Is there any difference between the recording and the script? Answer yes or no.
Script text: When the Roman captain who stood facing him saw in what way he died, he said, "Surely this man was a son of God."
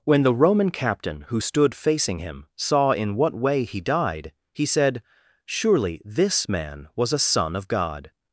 no